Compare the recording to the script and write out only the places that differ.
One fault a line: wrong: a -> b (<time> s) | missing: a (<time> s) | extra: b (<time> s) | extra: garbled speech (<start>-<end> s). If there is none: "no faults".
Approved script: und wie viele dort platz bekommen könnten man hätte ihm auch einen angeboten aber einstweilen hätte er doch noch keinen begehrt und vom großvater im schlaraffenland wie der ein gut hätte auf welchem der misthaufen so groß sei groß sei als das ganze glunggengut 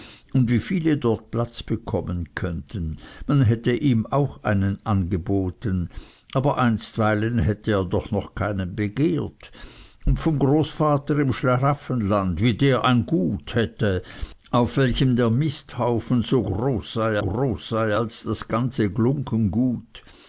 no faults